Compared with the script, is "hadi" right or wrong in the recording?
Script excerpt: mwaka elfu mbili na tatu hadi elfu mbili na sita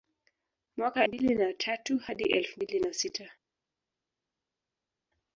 right